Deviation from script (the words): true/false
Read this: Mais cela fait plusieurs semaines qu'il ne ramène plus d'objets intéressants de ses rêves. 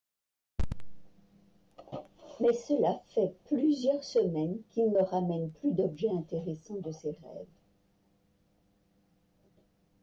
true